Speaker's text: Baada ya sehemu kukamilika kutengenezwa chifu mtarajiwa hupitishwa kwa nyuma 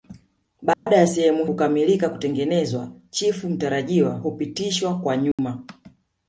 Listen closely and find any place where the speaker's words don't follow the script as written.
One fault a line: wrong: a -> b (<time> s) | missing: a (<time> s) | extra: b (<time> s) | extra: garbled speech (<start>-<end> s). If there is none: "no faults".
no faults